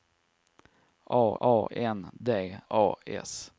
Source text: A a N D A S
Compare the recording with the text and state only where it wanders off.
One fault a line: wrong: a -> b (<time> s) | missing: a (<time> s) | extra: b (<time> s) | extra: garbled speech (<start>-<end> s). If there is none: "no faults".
no faults